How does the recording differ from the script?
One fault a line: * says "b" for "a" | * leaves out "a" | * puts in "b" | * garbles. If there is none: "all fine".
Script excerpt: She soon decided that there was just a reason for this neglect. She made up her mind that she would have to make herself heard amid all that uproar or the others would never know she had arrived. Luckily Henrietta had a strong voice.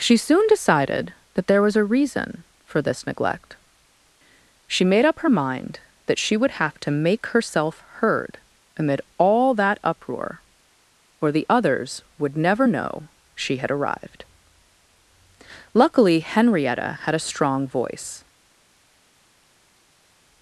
* leaves out "just"